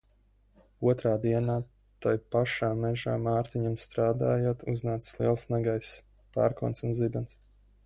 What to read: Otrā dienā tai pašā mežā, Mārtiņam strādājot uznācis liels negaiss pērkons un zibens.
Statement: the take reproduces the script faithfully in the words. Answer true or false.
true